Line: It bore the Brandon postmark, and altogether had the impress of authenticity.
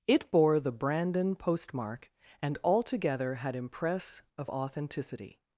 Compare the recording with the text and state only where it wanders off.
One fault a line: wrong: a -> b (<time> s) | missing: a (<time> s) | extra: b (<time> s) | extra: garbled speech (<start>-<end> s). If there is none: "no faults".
missing: the (3.5 s)